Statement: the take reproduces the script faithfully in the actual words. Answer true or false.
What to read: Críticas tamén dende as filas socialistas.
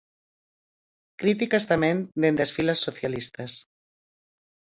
true